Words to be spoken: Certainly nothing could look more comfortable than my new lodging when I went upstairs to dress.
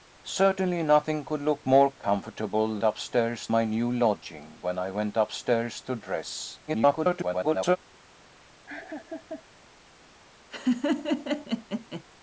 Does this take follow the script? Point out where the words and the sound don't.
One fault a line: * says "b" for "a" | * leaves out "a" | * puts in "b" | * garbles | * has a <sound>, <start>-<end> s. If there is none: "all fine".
* says "upstairs" for "than"
* garbles
* has a laugh, 8.7-9.4 s
* has a laugh, 10.5-12.0 s